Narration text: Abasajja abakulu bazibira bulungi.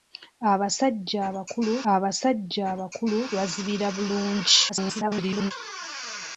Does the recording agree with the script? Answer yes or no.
no